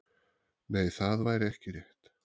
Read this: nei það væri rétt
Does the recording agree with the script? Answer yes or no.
no